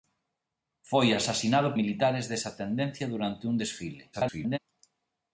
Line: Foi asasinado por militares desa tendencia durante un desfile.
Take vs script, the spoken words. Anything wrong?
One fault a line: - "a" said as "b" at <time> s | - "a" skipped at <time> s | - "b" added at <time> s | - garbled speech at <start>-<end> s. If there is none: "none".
- "por" skipped at 1.7 s
- garbled speech at 4.1-4.6 s